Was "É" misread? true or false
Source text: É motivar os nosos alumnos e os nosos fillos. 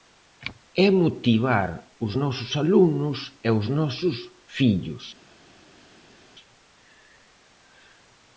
false